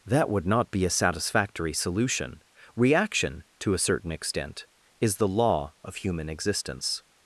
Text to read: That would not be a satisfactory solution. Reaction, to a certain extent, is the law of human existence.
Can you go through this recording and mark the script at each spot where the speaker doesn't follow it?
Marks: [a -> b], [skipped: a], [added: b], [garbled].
That would not be a satisfactory solution. Reaction, to a certain extent, is the law of human existence.